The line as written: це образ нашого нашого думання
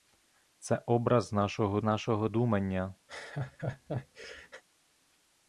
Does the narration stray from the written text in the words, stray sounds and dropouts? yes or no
yes